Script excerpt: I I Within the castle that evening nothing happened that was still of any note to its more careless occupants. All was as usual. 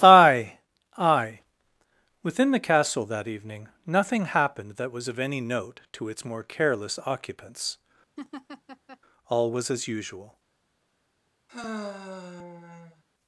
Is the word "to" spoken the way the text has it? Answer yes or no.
yes